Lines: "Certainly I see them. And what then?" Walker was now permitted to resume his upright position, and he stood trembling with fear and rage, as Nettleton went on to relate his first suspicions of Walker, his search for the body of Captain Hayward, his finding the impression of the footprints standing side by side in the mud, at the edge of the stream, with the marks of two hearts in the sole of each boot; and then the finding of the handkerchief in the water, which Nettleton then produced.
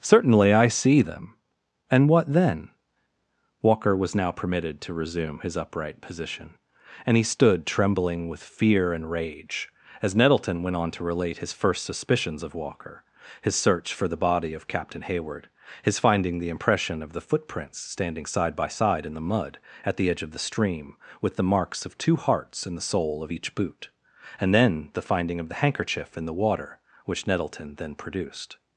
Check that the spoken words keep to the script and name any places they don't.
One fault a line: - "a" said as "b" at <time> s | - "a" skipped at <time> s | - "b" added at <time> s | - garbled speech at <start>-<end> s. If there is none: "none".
none